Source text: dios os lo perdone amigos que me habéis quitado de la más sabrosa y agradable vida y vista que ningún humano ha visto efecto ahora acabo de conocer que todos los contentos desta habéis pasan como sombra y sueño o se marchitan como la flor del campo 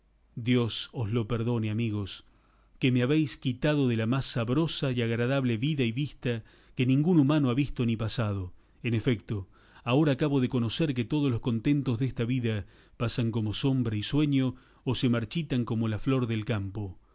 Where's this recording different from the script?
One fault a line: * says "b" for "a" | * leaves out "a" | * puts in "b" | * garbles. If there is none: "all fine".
* puts in "ni pasado en"
* says "vida" for "habéis"